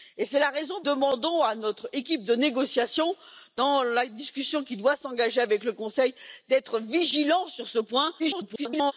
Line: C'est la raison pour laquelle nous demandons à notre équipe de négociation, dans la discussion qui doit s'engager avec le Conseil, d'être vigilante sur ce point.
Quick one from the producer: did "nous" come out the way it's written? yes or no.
no